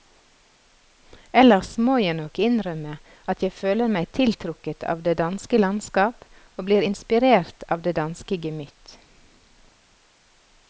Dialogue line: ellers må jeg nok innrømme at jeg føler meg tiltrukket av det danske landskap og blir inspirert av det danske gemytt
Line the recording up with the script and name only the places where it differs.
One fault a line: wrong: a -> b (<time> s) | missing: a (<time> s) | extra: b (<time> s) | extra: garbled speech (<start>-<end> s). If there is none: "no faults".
no faults